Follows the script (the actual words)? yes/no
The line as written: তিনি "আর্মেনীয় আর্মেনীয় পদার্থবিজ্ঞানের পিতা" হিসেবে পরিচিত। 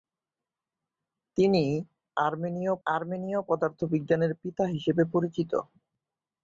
yes